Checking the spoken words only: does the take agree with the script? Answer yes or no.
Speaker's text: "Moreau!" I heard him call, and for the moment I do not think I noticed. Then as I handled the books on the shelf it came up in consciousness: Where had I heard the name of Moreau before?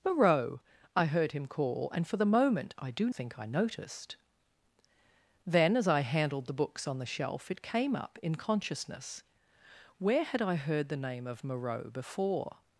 no